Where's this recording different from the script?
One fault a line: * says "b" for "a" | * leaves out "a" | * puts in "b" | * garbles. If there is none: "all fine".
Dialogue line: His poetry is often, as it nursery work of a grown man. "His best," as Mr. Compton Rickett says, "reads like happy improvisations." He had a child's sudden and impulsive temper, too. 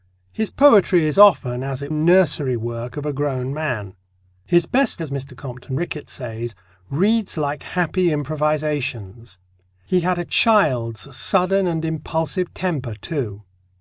all fine